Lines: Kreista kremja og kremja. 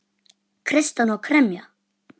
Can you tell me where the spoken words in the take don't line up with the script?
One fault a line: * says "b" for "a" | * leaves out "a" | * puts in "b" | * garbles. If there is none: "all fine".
* says "hana" for "kremja"